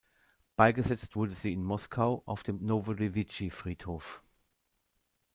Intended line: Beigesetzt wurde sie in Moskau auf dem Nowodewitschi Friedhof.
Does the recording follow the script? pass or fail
pass